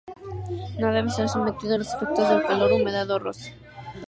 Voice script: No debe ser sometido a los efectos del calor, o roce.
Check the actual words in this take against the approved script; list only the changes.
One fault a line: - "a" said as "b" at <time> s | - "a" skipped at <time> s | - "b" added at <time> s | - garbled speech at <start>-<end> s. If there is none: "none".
- "humedad" added at 2.7 s